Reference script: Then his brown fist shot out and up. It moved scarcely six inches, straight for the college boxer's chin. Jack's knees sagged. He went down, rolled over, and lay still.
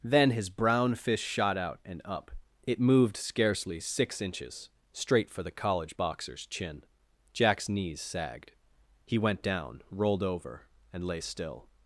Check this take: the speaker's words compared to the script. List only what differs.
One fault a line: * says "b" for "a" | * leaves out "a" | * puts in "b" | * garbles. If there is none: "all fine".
all fine